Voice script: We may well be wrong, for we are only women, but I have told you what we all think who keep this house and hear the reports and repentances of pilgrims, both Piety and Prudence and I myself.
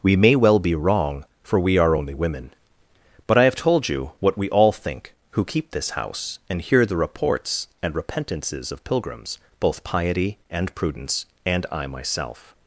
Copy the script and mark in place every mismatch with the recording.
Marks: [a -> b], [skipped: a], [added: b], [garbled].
We may well be wrong, for we are only women, but I have told you what we all think who keep this house and hear the reports and repentances of pilgrims, both Piety and Prudence and I myself.